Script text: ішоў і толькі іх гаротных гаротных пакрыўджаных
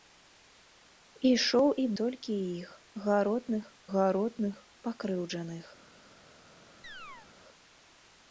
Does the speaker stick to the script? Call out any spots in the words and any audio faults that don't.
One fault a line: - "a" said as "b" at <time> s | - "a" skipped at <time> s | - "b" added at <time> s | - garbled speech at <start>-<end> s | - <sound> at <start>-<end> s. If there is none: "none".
- chirp at 6.8-7.3 s